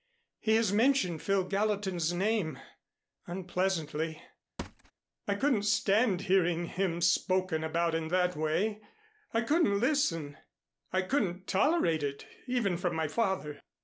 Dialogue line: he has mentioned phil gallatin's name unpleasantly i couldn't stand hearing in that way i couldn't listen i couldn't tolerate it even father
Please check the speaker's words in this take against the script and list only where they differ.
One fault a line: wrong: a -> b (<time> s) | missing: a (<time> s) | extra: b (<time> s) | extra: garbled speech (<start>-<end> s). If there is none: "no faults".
extra: him spoken about (6.7 s)
extra: from my (12.8 s)